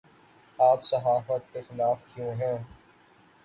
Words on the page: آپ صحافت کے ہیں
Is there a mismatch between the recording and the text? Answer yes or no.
yes